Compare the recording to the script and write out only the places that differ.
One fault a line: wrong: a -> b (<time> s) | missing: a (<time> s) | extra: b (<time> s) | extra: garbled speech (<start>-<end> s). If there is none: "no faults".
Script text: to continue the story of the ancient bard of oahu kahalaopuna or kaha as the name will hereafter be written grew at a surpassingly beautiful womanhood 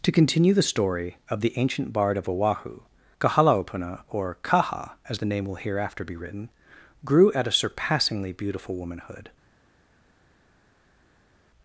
no faults